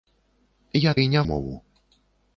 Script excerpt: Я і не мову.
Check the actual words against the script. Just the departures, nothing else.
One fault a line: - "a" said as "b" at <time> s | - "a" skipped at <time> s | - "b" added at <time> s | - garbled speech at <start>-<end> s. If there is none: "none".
none